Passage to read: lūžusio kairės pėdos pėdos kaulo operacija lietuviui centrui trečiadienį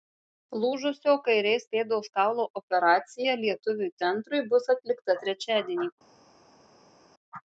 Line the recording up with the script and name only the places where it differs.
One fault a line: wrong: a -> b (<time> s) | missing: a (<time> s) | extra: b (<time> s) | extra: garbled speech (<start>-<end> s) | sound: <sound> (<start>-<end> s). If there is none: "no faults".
missing: pėdos (2.1 s)
extra: bus atlikta (4.6 s)